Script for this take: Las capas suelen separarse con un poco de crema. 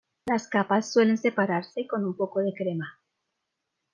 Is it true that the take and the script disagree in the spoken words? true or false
false